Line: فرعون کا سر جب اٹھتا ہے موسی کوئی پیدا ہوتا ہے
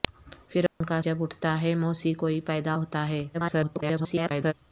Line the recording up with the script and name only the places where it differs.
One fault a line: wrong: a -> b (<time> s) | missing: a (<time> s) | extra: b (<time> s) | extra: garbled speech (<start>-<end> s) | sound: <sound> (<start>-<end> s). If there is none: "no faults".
sound: dropout (0.7-0.8 s)
missing: سر (1.0 s)
extra: garbled speech (3.3-4.5 s)